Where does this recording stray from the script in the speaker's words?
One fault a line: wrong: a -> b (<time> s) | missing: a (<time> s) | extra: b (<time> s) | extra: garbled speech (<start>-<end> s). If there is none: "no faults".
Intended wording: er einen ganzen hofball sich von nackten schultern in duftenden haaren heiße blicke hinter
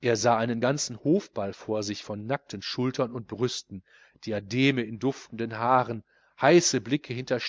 extra: sah (0.1 s)
extra: vor (1.5 s)
extra: und brüsten diademe (3.1 s)